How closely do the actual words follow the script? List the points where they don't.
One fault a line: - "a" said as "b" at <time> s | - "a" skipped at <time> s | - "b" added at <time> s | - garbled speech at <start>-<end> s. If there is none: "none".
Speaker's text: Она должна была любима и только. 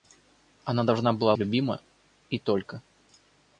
none